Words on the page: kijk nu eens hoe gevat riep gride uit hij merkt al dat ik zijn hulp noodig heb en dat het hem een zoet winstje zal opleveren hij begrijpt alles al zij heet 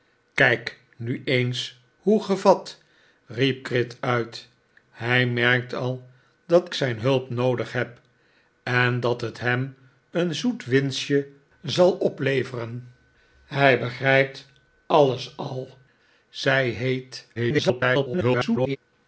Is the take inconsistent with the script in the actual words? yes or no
yes